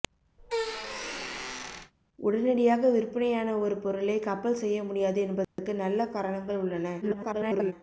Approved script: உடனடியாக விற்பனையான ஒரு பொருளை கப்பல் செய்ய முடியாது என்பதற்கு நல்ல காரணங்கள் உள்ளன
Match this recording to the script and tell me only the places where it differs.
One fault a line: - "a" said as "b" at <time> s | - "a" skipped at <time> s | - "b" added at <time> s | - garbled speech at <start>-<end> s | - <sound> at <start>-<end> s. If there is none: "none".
- squeak at 0.4-1.9 s
- dropout at 5.4-5.6 s
- garbled speech at 7.0-7.7 s